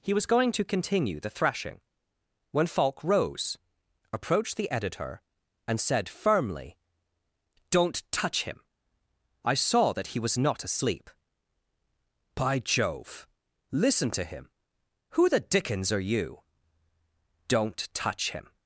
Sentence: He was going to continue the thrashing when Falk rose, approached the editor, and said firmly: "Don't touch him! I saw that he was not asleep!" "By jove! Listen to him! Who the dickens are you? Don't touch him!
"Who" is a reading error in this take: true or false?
false